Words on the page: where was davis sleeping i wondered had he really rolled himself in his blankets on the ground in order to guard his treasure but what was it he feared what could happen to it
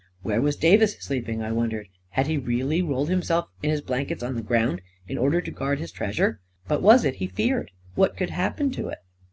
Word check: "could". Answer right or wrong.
right